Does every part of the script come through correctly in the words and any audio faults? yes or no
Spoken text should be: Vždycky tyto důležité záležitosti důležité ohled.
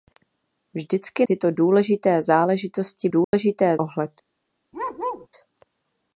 no